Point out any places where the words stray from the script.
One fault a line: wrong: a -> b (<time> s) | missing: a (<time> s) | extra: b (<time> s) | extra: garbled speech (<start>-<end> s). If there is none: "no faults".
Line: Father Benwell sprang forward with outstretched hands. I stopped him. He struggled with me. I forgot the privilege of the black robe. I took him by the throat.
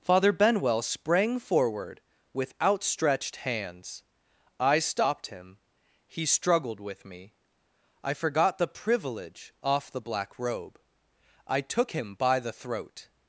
wrong: of -> off (9.6 s)